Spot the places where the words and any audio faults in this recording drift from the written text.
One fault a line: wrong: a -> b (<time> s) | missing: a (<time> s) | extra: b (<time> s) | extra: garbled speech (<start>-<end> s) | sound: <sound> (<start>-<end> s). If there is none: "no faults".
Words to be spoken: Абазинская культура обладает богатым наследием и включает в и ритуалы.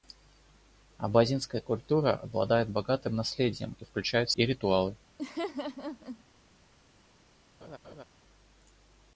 sound: laugh (5.2-6.2 s)
sound: laugh (7.6-8.0 s)